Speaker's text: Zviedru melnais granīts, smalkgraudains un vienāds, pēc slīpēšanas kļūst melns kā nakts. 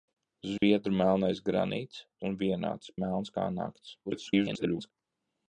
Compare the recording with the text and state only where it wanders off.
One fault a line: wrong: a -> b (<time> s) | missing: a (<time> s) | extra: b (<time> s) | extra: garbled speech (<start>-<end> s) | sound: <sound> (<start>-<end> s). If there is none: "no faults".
sound: dropout (0.6-0.6 s)
missing: smalkgraudains (2.0 s)
missing: pēc slīpēšanas kļūst (2.9 s)
extra: garbled speech (4.0-4.9 s)